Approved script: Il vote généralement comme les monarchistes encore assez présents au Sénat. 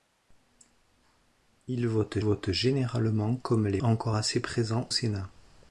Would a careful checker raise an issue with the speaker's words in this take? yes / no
yes